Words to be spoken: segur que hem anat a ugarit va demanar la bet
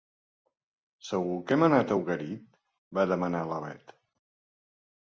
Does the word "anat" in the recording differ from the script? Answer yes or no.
no